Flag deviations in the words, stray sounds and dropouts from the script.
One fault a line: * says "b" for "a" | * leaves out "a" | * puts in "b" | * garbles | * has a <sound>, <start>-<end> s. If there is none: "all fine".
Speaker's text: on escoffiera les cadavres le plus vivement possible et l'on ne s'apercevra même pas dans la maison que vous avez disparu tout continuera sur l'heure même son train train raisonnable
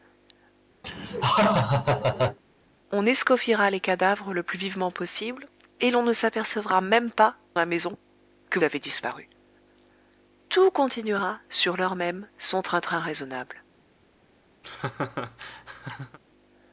* has a laugh, 0.8-2.4 s
* leaves out "dans"
* leaves out "vous"
* has a laugh, 14.6-16.2 s